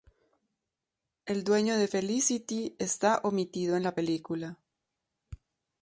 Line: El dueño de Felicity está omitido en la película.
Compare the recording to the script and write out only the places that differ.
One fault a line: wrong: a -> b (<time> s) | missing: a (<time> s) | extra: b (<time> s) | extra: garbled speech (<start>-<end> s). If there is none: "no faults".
no faults